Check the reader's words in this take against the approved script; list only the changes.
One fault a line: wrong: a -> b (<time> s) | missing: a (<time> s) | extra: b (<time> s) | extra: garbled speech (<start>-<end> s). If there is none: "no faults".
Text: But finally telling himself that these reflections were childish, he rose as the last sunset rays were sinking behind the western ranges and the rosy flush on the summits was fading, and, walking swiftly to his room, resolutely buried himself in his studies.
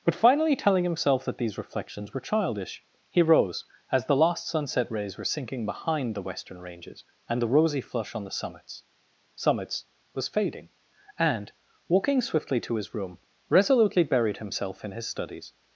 extra: summits (9.3 s)